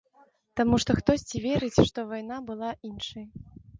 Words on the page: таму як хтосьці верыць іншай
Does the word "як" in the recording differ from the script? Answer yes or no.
yes